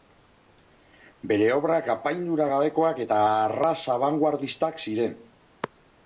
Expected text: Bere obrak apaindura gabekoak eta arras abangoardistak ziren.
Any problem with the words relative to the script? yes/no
no